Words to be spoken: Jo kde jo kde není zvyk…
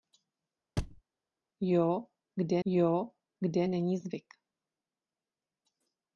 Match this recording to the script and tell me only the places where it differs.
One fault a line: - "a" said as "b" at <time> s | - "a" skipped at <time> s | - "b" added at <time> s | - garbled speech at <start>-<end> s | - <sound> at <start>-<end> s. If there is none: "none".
- thud at 0.8-1.0 s